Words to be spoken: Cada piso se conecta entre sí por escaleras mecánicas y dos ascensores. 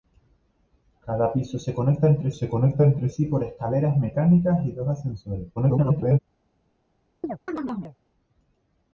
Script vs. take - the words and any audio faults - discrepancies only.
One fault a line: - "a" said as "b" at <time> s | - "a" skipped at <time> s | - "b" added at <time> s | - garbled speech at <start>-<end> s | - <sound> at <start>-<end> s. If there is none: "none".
- "se conecta entre" added at 2.3 s
- garbled speech at 5.6-6.2 s
- chirp at 7.2-8.0 s